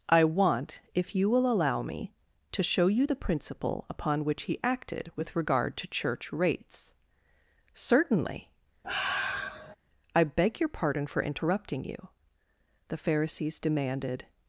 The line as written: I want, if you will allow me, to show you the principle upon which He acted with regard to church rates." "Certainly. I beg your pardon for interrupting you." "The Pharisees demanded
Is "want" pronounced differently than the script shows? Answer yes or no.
no